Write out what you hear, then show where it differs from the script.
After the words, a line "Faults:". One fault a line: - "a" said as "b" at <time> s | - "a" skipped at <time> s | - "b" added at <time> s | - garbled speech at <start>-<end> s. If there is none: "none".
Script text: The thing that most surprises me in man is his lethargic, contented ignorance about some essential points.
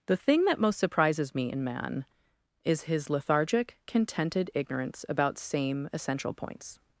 The thing that most surprises me in man is his lethargic, contented ignorance about same essential points.
Faults:
- "some" said as "same" at 5.4 s